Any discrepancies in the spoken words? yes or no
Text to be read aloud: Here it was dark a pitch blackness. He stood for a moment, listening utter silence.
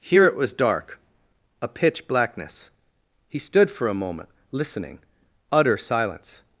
no